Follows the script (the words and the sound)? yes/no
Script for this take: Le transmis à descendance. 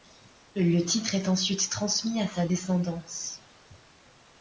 no